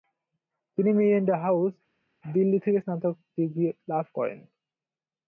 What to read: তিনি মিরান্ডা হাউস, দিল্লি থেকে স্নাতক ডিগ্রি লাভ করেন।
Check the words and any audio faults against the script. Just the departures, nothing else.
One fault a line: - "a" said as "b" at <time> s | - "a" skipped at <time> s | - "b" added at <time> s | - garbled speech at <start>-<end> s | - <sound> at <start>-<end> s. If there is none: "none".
none